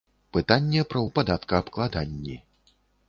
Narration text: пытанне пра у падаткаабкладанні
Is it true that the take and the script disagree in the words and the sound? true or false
false